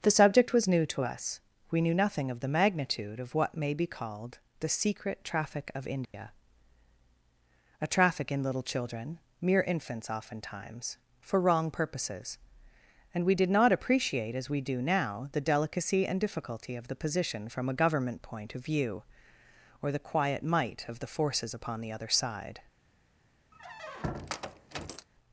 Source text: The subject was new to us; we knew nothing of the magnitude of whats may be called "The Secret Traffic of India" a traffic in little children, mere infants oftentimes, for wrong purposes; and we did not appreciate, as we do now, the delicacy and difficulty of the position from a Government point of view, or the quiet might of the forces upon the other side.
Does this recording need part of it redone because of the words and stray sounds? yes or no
yes